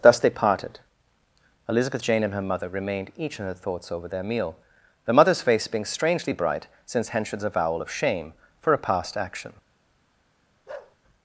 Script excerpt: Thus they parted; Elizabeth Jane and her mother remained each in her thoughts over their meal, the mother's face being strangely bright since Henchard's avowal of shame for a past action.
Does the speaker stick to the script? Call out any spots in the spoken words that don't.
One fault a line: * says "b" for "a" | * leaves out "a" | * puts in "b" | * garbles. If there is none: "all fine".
all fine